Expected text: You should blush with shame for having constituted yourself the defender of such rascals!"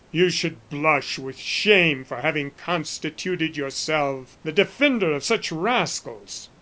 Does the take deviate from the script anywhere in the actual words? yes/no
no